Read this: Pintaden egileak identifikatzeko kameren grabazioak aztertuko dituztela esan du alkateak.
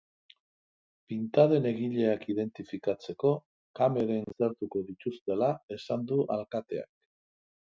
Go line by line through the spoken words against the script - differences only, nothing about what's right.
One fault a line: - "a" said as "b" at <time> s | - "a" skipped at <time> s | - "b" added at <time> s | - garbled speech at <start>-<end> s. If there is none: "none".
- "grabazioak" skipped at 4.3 s